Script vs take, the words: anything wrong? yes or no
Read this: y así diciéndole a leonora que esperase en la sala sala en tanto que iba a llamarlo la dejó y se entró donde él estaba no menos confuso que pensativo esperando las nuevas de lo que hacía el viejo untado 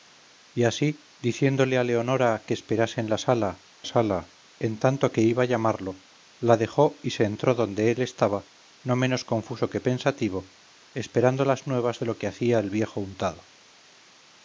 no